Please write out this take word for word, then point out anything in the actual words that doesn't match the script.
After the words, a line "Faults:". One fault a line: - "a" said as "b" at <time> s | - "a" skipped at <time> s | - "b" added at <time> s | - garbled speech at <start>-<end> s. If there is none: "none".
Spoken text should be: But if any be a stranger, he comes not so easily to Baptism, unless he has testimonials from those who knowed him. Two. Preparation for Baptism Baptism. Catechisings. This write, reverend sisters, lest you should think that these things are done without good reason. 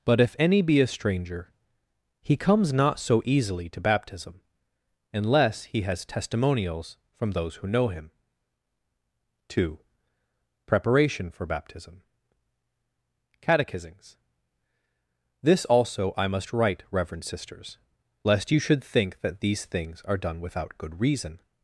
But if any be a stranger, he comes not so easily to Baptism, unless he has testimonials from those who know him. Two. Preparation for Baptism. Catechisings. This also I must write, reverend sisters, lest you should think that these things are done without good reason.
Faults:
- "knowed" said as "know" at 7.7 s
- "Baptism" skipped at 12.0 s
- "also I must" added at 15.7 s